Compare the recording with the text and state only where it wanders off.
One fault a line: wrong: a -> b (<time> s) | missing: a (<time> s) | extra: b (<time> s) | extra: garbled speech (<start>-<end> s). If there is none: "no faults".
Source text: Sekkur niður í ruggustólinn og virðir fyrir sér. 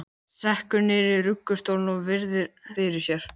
no faults